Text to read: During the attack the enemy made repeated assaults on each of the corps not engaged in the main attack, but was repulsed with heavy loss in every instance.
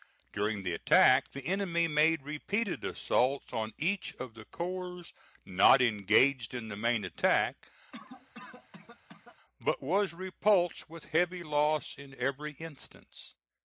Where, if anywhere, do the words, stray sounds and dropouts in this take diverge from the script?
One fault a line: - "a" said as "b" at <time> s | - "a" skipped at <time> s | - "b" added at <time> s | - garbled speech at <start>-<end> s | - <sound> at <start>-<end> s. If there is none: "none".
- cough at 7.9-9.4 s